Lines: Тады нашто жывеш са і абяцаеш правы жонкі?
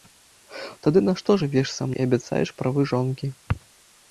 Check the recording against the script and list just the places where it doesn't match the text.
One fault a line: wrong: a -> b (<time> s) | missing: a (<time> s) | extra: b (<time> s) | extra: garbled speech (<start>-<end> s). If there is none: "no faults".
no faults